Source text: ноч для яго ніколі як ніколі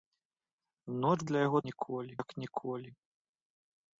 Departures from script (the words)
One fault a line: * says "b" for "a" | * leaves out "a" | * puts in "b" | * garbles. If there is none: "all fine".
all fine